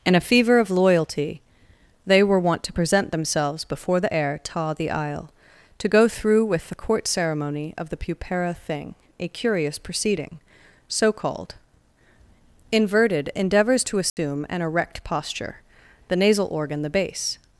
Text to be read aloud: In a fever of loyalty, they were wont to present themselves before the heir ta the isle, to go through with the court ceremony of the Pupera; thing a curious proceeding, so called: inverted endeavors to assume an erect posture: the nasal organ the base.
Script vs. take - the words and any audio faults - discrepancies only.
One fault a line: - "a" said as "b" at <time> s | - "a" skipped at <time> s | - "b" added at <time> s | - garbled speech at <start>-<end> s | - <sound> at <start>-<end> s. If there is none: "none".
- dropout at 14.1-14.2 s